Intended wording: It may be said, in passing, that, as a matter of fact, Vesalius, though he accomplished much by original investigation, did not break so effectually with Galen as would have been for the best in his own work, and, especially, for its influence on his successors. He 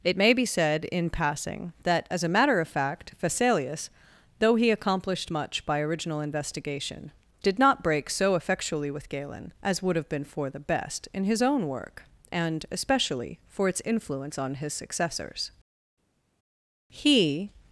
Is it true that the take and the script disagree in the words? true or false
false